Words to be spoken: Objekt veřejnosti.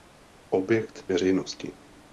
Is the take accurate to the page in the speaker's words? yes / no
yes